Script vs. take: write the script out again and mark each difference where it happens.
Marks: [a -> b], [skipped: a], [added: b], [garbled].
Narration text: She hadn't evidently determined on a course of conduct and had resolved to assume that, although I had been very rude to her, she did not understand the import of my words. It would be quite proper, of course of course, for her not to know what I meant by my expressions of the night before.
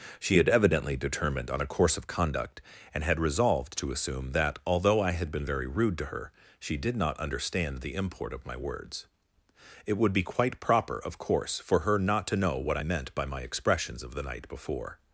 She [hadn't -> had] evidently determined on a course of conduct and had resolved to assume that, although I had been very rude to her, she did not understand the import of my words. It would be quite proper, of course [skipped: of course,] for her not to know what I meant by my expressions of the night before.